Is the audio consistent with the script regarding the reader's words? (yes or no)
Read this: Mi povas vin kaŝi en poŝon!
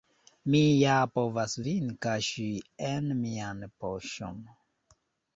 no